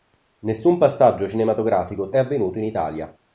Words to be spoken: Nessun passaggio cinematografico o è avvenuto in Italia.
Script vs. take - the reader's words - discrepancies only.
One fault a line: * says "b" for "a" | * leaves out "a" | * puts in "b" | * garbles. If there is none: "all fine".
all fine